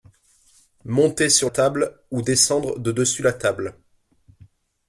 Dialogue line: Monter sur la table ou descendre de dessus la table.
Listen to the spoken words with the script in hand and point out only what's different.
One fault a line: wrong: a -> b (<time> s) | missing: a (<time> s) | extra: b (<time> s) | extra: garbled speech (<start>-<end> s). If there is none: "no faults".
missing: la (1.5 s)